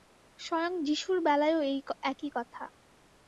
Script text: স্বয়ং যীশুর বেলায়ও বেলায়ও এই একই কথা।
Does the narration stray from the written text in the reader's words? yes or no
yes